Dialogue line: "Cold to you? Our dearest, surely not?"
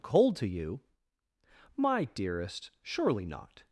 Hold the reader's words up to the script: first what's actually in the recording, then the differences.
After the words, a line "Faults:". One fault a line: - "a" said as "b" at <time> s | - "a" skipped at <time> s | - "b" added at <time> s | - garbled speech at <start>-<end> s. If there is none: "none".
"Cold to you? My dearest, surely not?"
Faults:
- "Our" said as "My" at 1.8 s